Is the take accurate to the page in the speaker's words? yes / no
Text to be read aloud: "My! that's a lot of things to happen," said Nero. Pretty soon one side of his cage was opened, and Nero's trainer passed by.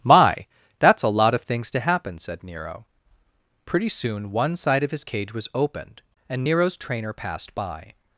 yes